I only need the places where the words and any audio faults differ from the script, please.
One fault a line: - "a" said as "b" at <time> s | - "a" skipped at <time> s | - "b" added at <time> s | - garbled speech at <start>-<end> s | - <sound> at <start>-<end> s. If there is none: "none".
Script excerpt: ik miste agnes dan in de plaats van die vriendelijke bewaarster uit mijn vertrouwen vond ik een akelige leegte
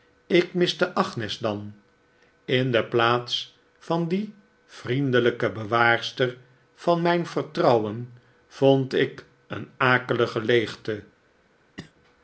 - "uit" said as "van" at 6.7 s
- cough at 11.8-11.9 s